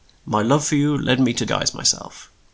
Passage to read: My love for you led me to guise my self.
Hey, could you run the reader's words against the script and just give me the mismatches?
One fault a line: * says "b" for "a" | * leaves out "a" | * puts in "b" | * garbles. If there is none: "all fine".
all fine